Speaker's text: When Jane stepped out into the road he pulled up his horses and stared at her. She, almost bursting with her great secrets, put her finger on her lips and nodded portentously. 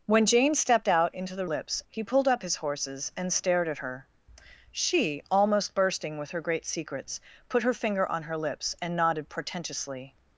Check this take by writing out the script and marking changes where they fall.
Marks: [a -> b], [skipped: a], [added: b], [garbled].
When Jane stepped out into the [road -> lips] he pulled up his horses and stared at her. She, almost bursting with her great secrets, put her finger on her lips and nodded portentously.